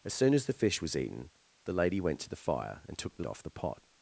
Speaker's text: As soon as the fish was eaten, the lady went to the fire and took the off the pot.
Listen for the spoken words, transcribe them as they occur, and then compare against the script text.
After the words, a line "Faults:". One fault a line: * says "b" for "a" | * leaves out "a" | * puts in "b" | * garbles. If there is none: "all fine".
As soon as the fish was eaten, the lady went to the fire and took the off the pot.
Faults:
all fine